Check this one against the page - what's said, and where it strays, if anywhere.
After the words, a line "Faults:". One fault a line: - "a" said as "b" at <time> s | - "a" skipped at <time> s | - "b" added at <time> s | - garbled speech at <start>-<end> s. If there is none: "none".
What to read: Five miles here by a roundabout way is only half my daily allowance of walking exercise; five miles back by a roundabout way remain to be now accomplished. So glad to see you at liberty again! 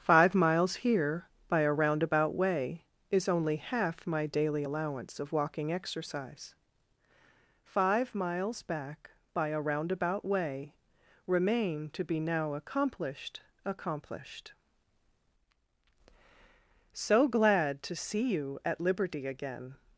Five miles here by a roundabout way is only half my daily allowance of walking exercise; five miles back by a roundabout way remain to be now accomplished accomplished. So glad to see you at liberty again!
Faults:
- "accomplished" added at 13.6 s